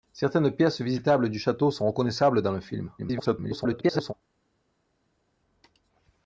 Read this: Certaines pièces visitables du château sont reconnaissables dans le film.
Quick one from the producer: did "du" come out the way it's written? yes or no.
yes